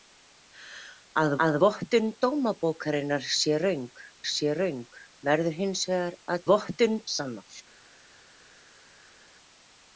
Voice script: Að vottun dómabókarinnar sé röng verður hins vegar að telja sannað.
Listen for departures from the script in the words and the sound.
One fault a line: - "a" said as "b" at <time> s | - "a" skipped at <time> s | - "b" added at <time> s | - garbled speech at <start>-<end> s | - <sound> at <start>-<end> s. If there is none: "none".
- "að" added at 1.5 s
- "sé röng" added at 4.3 s
- "telja" said as "vottun" at 6.5 s